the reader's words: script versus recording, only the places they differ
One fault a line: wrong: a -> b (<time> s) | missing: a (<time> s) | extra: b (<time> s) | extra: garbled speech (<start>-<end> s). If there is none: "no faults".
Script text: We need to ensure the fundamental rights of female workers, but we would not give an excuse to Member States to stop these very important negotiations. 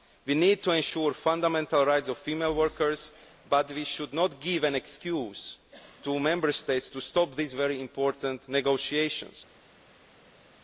wrong: would -> should (3.8 s)